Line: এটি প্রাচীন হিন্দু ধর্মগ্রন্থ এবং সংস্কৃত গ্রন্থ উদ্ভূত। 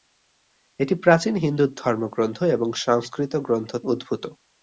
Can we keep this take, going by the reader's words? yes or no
yes